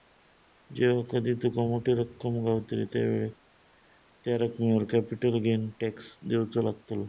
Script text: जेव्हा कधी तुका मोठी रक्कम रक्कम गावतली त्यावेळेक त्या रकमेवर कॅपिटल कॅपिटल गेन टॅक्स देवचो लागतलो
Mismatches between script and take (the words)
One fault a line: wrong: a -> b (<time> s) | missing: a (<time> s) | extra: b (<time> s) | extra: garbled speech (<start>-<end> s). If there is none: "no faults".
missing: रक्कम (2.4 s)
missing: कॅपिटल (5.4 s)